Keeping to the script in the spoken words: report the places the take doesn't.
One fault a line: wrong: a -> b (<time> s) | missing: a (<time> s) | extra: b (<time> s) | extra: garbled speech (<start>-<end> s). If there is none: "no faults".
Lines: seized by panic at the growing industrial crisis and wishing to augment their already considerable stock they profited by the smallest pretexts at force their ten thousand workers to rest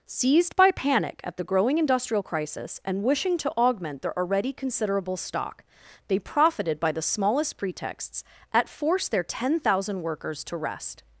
no faults